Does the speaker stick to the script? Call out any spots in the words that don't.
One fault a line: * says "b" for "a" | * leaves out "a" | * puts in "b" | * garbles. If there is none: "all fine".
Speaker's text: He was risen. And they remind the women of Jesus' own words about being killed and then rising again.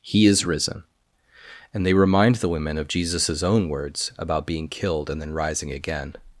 * says "is" for "was"